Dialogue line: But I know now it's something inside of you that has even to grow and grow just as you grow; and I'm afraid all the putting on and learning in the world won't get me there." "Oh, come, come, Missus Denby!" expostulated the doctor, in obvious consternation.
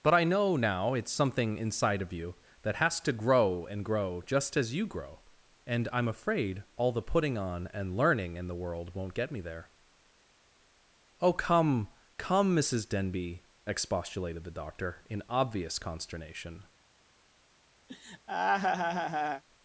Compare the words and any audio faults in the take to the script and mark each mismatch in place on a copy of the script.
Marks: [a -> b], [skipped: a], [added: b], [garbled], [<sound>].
But I know now it's something inside of you that has [skipped: even] to grow and grow just as you grow; and I'm afraid all the putting on and learning in the world won't get me there." "Oh, come, come, Missus Denby!" expostulated the doctor, in obvious consternation. [laugh]